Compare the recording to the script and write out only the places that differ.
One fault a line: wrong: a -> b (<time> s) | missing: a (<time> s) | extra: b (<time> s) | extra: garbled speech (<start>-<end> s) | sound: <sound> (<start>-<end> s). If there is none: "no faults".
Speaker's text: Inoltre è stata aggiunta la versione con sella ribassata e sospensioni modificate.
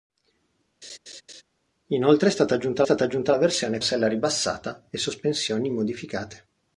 sound: laugh (0.8-1.4 s)
extra: stata aggiunta (2.8 s)
missing: con (3.8 s)